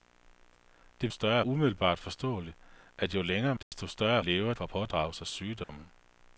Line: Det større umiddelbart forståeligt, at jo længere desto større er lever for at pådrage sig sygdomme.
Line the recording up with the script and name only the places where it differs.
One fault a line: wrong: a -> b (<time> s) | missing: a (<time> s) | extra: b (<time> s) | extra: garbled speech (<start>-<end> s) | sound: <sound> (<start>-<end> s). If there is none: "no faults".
sound: dropout (3.6-3.7 s)
sound: dropout (5.6-5.7 s)